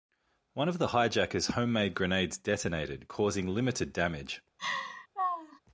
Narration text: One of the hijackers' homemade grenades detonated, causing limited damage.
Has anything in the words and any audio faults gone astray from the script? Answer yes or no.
yes